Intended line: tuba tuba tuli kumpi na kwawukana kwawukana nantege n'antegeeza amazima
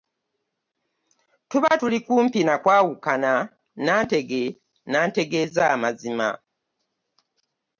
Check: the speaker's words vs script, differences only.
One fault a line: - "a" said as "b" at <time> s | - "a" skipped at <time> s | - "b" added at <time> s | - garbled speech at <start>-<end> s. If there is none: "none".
- "tuba" skipped at 1.7 s
- "kwawukana" skipped at 3.3 s